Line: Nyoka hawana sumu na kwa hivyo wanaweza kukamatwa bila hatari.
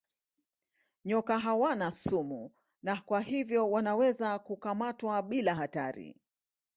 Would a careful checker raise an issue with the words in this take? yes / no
no